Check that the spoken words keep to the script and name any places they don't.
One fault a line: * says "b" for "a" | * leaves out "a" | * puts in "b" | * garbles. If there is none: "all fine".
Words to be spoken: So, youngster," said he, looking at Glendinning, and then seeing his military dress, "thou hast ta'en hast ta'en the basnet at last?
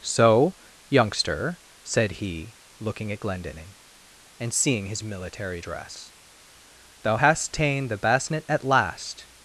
* leaves out "then"
* leaves out "hast ta'en"